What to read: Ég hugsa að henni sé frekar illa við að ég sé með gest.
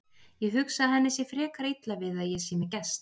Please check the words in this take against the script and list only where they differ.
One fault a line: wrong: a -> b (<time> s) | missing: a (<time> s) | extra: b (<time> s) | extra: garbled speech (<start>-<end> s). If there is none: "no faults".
no faults